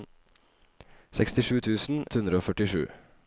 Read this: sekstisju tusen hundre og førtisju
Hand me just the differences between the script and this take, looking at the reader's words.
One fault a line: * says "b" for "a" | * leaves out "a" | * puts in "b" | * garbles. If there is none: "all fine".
all fine